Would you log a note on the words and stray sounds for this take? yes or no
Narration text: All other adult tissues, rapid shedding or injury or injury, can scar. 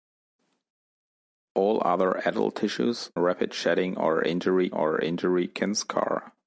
no